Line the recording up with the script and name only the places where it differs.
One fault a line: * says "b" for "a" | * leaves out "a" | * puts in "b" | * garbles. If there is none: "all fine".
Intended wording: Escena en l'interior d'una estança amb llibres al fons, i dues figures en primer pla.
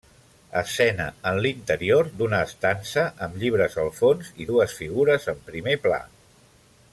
all fine